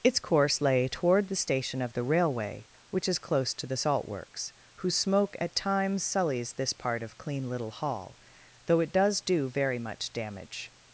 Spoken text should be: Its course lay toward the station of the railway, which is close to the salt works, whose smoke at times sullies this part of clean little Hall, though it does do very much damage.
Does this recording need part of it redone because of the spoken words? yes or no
no